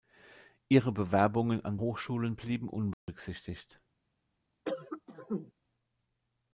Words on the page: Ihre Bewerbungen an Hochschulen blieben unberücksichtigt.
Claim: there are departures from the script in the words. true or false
false